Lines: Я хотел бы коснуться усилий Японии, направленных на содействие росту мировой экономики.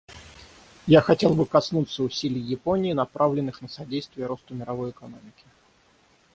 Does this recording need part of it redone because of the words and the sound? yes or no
no